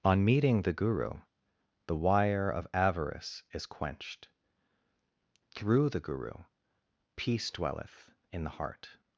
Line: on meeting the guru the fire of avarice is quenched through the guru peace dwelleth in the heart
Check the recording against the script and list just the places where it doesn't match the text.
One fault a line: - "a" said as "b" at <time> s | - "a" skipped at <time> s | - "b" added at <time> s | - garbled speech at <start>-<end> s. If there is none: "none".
- "fire" said as "wire" at 1.9 s